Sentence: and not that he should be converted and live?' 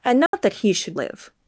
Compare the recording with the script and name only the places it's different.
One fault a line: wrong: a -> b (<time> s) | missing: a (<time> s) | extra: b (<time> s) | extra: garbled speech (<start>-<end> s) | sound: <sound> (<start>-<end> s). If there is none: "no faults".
sound: dropout (0.3-0.3 s)
missing: be converted and (0.9 s)